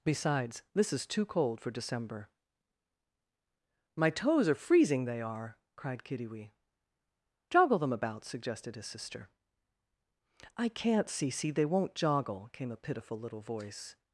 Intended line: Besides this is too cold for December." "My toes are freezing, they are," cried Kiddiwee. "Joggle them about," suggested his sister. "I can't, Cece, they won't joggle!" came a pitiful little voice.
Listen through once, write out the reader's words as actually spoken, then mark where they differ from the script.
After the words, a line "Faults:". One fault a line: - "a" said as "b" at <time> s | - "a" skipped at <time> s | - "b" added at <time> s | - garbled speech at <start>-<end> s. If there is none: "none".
Besides this is too cold for December." "My toes are freezing, they are," cried Kiddiwee. "Joggle them about," suggested his sister. "I can't, Cece, they won't joggle!" came a pitiful little voice.
Faults:
none